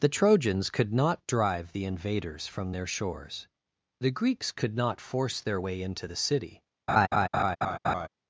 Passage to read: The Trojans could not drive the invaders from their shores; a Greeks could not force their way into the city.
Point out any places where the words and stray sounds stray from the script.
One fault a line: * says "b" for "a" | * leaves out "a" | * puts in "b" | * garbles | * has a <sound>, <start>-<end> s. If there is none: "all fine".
* says "the" for "a"
* has a laugh, 6.9-8.1 s